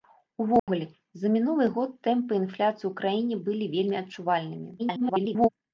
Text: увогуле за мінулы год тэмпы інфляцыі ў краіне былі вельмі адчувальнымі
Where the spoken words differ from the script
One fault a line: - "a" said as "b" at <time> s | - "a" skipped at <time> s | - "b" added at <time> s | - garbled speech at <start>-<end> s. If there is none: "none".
- garbled speech at 4.8-5.5 s